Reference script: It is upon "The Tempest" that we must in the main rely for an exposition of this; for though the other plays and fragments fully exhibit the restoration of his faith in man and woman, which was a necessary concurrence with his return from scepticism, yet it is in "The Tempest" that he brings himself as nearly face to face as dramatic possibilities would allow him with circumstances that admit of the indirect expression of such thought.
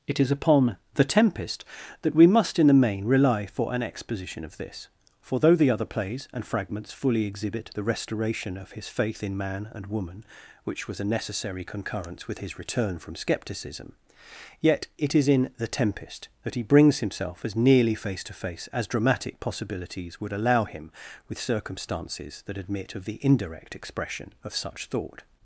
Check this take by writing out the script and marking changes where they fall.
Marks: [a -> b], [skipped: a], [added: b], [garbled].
It is upon "The Tempest" that we must in the main rely for an exposition of this; for though the other plays and fragments fully exhibit the restoration of his faith in man and woman, which was a necessary concurrence with his return from scepticism, yet it is in "The Tempest" that he brings himself as nearly face to face as dramatic possibilities would allow him with circumstances that admit of the indirect expression of such thought.